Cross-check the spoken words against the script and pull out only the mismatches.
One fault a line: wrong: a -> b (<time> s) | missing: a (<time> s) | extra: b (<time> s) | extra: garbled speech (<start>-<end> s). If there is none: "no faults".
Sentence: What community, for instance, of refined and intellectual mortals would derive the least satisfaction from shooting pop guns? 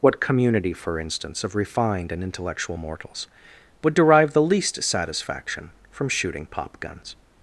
no faults